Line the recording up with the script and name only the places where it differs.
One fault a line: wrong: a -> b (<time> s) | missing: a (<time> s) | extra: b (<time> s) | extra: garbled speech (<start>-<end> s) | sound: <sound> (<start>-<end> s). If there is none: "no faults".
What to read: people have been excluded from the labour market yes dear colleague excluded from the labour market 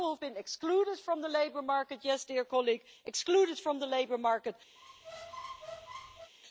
sound: squeak (4.8-6.3 s)